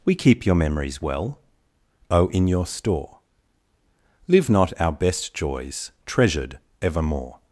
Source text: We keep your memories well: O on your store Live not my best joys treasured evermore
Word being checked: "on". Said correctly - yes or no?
no